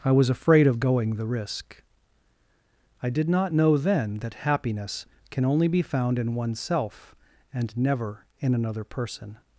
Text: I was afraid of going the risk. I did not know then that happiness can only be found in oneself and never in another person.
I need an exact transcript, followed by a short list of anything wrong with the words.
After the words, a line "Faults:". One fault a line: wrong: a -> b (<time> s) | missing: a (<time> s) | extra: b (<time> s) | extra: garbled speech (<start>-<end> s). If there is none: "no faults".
I was afraid of going the risk. I did not know then that happiness can only be found in oneself and never in another person.
Faults:
no faults